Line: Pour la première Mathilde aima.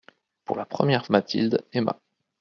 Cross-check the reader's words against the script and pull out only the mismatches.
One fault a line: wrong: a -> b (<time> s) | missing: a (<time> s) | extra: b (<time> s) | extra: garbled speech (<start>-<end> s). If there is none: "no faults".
no faults